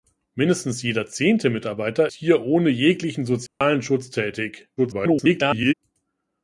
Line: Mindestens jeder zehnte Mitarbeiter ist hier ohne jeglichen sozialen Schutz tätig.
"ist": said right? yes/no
no